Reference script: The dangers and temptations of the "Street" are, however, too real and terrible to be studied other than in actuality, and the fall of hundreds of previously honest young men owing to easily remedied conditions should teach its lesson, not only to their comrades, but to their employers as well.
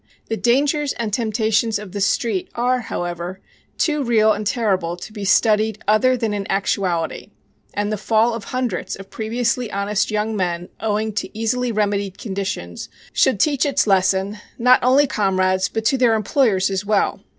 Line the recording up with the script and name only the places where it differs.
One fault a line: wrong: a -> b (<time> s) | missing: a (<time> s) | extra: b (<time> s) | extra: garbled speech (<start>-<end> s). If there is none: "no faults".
missing: to their (15.0 s)